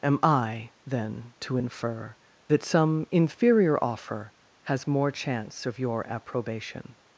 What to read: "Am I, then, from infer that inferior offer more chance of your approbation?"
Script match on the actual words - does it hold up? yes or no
no